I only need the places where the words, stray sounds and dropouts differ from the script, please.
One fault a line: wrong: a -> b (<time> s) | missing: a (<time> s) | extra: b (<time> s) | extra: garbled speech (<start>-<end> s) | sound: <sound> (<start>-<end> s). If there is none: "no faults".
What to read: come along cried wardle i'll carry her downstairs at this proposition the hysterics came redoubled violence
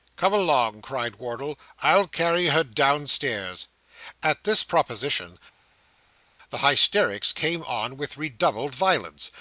extra: on with (7.6 s)